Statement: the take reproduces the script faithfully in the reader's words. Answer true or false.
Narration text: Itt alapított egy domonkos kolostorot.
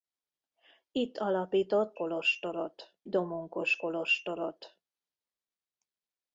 false